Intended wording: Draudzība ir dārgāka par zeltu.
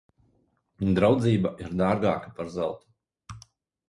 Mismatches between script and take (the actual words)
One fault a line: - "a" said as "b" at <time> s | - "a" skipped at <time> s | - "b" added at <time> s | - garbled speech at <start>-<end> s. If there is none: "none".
none